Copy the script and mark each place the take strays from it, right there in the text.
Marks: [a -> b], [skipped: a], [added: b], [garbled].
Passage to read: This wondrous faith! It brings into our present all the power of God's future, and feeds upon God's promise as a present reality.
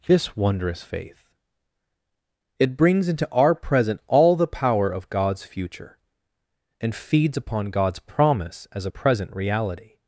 This wondrous faith! It brings into our present all the power of God's future, and feeds upon God's promise as a present reality.